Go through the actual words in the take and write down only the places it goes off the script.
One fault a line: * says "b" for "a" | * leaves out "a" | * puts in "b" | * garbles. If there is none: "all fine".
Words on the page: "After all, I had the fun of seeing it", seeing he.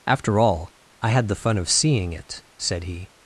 * says "said" for "seeing"